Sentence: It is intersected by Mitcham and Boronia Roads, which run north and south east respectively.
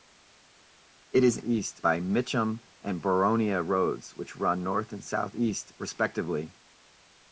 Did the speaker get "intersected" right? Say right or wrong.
wrong